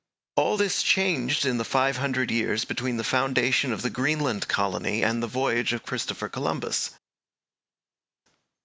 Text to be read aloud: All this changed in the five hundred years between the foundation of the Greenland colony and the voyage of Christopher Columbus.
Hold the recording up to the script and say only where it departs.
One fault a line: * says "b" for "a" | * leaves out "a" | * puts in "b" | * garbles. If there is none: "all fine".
all fine